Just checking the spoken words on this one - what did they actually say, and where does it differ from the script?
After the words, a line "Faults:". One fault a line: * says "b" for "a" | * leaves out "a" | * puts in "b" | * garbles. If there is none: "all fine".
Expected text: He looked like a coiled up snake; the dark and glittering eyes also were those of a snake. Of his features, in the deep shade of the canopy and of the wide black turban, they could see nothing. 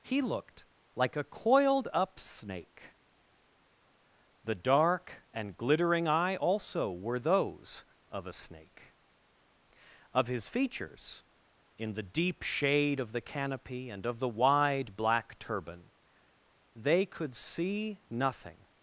He looked like a coiled up snake; the dark and glittering eye also were those of a snake. Of his features, in the deep shade of the canopy and of the wide black turban, they could see nothing.
Faults:
* says "eye" for "eyes"